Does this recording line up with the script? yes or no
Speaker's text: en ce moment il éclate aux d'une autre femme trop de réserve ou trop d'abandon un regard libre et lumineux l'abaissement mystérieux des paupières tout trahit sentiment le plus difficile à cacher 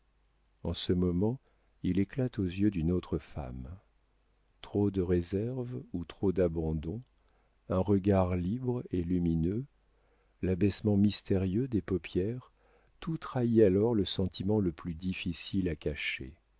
no